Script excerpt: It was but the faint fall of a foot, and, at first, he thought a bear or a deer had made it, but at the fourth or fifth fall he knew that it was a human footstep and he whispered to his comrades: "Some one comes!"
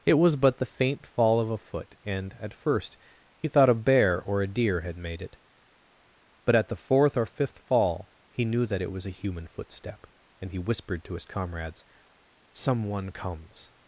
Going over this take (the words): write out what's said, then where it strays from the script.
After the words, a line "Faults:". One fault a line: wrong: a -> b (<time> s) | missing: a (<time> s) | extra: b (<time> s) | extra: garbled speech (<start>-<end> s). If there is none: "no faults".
It was but the faint fall of a foot, and, at first, he thought a bear or a deer had made it, but at the fourth or fifth fall he knew that it was a human footstep and he whispered to his comrades: "Some one comes!"
Faults:
no faults